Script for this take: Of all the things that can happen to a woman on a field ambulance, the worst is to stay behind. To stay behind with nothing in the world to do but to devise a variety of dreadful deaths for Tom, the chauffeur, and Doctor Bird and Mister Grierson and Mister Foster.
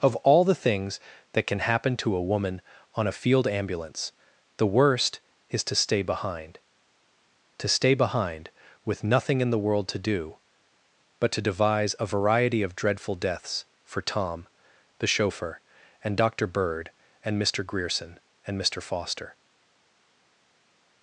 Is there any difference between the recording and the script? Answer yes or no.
no